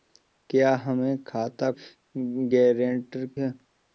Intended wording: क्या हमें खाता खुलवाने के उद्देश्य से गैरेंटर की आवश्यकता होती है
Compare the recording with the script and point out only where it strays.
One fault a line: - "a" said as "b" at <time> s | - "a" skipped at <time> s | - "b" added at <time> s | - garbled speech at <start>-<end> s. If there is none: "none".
- "खुलवाने के उद्देश्य" skipped at 1.7 s
- "की आवश्यकता होती" skipped at 3.3 s